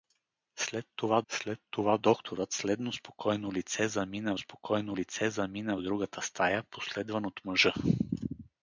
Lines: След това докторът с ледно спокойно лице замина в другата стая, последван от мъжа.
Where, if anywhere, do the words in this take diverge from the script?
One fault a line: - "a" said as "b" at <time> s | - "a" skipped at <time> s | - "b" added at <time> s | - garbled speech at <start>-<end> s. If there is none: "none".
- "след това" added at 1.3 s
- "спокойно лице замина" added at 4.4 s